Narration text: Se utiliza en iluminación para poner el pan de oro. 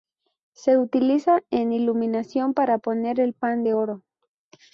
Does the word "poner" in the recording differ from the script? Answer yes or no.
no